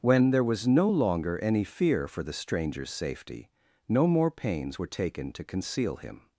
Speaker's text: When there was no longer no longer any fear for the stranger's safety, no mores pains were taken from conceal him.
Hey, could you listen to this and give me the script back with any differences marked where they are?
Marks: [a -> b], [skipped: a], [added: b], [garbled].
When there was no longer [skipped: no longer] any fear for the stranger's safety, no [mores -> more] pains were taken [from -> to] conceal him.